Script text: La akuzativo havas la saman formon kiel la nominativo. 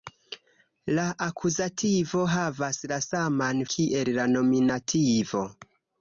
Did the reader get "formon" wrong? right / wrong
wrong